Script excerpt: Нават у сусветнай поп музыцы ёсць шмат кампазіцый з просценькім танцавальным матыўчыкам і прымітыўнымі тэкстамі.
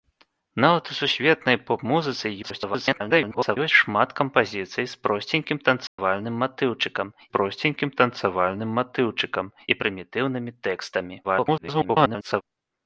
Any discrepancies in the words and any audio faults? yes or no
yes